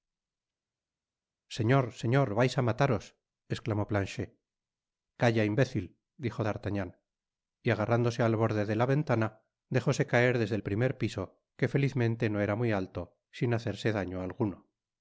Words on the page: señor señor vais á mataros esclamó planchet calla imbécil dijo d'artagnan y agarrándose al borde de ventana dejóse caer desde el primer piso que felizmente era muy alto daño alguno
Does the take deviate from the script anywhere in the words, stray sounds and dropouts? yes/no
yes